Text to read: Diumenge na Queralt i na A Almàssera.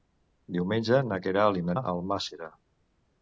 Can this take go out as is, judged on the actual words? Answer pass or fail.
pass